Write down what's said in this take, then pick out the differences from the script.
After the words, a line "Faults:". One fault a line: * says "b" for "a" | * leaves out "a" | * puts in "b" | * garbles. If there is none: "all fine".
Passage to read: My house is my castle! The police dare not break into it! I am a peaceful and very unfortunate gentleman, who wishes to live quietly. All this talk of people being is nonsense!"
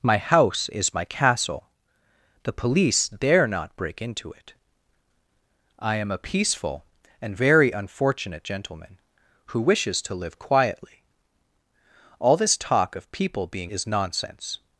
My house is my castle! The police dare not break into it! I am a peaceful and very unfortunate gentleman, who wishes to live quietly. All this talk of people being is nonsense!"
Faults:
all fine